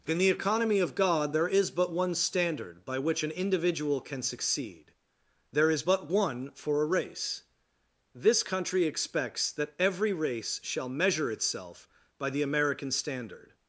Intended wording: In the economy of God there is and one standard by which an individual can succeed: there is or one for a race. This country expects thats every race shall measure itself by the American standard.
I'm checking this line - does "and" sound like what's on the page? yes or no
no